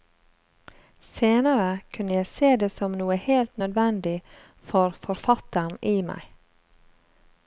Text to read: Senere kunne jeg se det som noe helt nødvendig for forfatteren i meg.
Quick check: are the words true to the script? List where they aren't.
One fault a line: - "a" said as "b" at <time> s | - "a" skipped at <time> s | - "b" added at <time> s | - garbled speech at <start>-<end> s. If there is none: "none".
none